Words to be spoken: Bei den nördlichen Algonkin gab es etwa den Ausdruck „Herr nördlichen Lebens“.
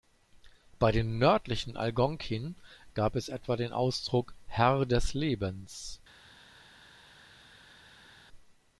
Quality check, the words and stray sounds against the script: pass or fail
fail